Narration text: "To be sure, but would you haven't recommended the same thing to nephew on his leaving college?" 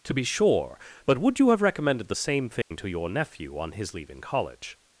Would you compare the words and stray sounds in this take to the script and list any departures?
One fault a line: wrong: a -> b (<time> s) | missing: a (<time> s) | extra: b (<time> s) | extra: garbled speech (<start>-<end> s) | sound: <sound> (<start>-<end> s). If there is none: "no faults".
wrong: haven't -> have (1.5 s)
sound: dropout (2.6-2.7 s)
extra: your (2.9 s)